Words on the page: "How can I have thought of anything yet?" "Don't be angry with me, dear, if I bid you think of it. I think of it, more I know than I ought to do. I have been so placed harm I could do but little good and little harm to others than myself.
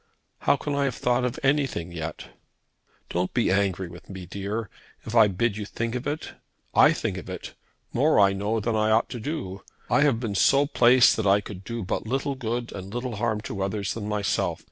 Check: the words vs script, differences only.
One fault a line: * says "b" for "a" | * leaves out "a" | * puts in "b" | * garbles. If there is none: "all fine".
* says "that" for "harm"